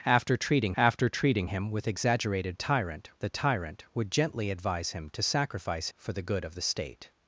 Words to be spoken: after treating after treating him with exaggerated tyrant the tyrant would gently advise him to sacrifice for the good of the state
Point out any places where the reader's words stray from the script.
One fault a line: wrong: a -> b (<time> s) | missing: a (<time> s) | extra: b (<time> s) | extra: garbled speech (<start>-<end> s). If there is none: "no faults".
no faults